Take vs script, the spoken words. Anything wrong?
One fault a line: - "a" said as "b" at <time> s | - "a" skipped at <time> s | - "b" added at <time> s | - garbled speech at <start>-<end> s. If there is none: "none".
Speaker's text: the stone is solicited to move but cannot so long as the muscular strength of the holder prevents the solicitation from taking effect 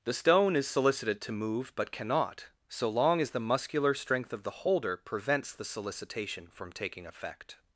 none